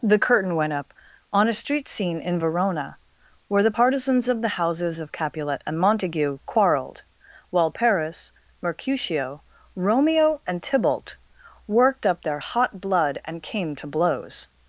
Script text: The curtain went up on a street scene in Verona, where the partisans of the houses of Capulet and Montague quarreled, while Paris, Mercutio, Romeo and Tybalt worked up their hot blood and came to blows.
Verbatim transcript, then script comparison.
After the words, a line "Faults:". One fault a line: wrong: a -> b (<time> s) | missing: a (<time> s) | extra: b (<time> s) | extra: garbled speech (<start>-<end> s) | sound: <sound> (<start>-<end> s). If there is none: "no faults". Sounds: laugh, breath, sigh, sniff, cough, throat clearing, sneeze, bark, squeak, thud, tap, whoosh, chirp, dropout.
The curtain went up on a street scene in Verona, where the partisans of the houses of Capulet and Montague quarreled, while Paris, Mercutio, Romeo and Tybalt worked up their hot blood and came to blows.
Faults:
no faults